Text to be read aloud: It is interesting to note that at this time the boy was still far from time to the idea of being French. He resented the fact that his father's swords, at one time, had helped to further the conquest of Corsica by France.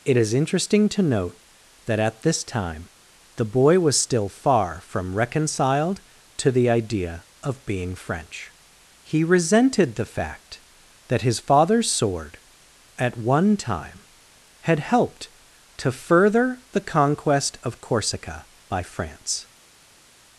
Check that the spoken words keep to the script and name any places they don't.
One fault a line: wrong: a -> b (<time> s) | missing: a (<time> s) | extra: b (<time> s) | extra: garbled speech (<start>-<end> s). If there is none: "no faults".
wrong: time -> reconciled (5.2 s)
wrong: swords -> sword (11.9 s)